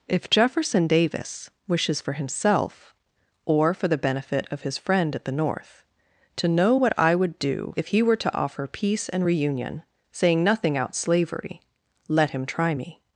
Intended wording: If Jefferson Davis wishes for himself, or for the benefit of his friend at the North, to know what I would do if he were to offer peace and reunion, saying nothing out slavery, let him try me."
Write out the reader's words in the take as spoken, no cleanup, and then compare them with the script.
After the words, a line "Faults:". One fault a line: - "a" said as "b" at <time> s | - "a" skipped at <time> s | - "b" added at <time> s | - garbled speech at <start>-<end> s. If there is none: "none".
If Jefferson Davis wishes for himself, or for the benefit of his friend at the North, to know what I would do if he were to offer peace and reunion, saying nothing out slavery, let him try me."
Faults:
none